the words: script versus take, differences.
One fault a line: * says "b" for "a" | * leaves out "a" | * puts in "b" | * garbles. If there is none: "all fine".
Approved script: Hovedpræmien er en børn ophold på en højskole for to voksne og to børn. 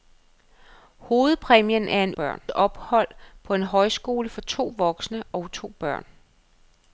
all fine